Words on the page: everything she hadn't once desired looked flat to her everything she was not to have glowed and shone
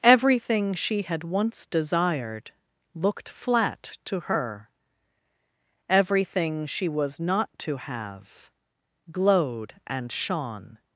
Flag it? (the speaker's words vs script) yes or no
yes